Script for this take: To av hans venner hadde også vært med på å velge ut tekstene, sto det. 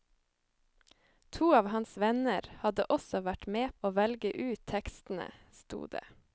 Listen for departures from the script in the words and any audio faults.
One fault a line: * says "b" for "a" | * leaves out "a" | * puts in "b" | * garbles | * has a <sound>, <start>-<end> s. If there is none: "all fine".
* leaves out "på"